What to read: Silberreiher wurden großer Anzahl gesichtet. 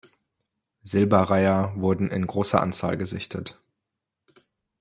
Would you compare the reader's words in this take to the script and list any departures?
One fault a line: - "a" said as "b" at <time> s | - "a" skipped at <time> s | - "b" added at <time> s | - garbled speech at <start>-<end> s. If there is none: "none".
- "in" added at 2.1 s